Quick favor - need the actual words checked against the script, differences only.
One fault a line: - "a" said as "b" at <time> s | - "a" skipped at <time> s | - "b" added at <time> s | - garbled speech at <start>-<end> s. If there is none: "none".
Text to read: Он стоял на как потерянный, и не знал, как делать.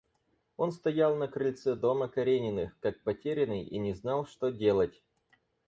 - "крыльце дома Карениных" added at 1.3 s
- "как" said as "что" at 4.3 s